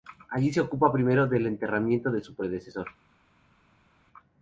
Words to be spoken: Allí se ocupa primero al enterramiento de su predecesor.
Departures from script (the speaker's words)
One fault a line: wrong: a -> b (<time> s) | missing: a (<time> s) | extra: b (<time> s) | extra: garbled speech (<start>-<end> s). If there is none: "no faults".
wrong: al -> del (1.3 s)